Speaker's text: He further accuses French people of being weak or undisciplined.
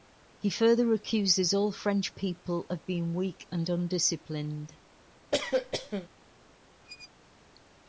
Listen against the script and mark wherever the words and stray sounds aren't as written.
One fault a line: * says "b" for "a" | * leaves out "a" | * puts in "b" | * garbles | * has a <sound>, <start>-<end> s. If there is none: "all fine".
* puts in "all"
* says "and" for "or"
* has a cough, 5.3-6.1 s
* has a squeak, 6.8-7.1 s